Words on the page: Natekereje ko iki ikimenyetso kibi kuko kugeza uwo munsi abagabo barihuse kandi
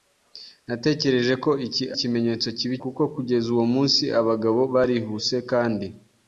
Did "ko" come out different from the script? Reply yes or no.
no